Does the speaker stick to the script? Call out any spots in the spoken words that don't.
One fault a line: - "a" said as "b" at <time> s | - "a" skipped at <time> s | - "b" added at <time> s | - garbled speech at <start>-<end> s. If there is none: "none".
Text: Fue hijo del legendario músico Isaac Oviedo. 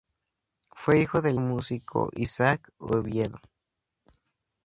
- "legendario" skipped at 1.4 s